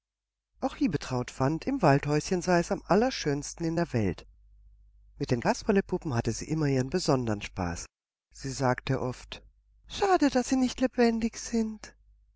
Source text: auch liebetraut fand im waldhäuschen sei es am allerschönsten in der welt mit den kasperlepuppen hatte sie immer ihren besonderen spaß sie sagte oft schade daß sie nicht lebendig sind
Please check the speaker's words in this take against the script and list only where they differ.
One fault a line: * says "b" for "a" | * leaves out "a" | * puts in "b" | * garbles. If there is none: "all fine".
all fine